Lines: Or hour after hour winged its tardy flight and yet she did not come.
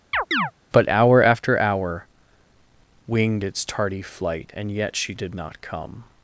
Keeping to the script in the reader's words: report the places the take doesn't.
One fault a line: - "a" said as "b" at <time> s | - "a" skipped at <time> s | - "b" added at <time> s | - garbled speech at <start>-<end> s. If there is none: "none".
- "Or" said as "But" at 0.7 s